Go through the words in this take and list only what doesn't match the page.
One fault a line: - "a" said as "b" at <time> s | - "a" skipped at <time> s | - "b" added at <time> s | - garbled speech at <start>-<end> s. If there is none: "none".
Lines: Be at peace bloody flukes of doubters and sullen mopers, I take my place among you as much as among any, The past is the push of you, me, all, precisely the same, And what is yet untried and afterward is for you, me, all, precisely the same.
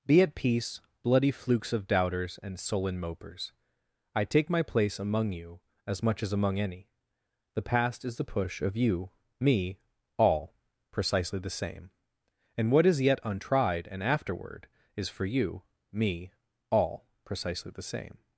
none